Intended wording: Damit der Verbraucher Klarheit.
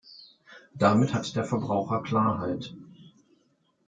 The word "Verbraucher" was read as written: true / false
true